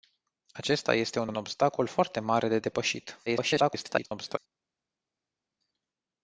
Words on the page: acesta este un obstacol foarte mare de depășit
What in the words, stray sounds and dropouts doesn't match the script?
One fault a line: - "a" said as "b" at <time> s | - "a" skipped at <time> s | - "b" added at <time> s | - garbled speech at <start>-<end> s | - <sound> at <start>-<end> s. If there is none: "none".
- "un" added at 1.2 s
- garbled speech at 3.3-4.4 s